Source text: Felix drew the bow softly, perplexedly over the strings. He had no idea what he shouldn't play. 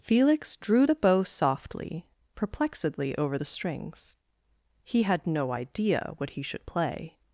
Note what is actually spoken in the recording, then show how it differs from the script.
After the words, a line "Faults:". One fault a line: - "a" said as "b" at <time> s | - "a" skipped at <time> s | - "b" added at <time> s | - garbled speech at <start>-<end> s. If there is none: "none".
Felix drew the bow softly, perplexedly over the strings. He had no idea what he should play.
Faults:
- "shouldn't" said as "should" at 6.4 s